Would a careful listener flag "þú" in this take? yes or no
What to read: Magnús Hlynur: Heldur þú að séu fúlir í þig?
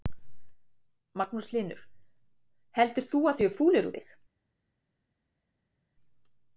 no